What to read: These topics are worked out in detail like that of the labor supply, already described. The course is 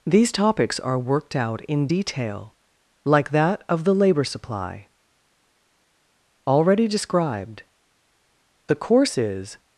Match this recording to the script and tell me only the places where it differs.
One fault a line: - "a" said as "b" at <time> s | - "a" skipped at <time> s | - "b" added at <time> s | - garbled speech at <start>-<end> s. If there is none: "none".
none